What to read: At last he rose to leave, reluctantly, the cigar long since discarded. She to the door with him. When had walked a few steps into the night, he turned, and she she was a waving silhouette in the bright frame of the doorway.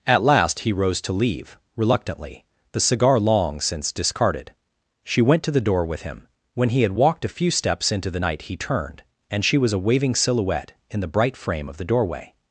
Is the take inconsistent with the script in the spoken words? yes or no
yes